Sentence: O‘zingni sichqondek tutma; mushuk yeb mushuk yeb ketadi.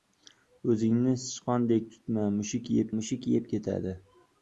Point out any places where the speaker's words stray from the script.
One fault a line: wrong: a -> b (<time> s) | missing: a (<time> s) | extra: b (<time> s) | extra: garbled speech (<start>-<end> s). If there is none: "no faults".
no faults